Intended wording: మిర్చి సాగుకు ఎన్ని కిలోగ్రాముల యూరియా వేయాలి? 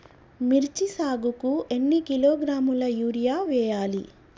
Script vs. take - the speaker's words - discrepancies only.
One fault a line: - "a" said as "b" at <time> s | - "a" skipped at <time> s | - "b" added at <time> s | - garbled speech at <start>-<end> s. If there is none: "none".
none